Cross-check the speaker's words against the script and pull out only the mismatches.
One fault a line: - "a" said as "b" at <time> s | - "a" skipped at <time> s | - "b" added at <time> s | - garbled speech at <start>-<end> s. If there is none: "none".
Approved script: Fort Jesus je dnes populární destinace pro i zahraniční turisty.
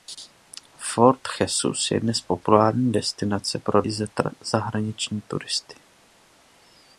none